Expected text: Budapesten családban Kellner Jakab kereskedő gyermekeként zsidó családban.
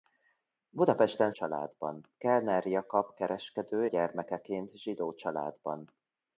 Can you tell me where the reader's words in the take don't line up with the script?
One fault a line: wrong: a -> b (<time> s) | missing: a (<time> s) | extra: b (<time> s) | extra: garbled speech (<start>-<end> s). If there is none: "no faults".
no faults